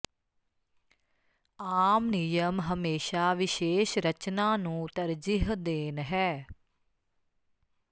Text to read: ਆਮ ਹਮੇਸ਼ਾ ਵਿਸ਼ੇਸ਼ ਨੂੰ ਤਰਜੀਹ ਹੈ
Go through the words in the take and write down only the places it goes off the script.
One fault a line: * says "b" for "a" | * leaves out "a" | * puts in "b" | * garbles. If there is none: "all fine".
* puts in "ਨਿਯਮ"
* puts in "ਰਚਨਾ"
* puts in "ਦੇਣ"